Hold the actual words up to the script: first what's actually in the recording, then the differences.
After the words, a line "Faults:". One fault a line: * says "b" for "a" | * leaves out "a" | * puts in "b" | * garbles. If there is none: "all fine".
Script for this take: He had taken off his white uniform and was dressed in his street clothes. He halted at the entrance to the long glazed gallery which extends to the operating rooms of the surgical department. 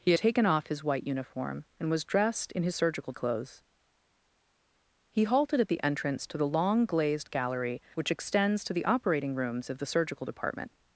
He taken off his white uniform and was dressed in his surgical clothes. He halted at the entrance to the long glazed gallery which extends to the operating rooms of the surgical department.
Faults:
* leaves out "had"
* says "surgical" for "street"